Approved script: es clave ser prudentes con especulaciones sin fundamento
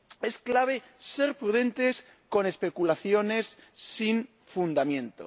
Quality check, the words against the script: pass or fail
pass